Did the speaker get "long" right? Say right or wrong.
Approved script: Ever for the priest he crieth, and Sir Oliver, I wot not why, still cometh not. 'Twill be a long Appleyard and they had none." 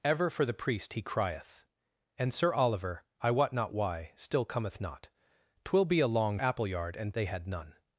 right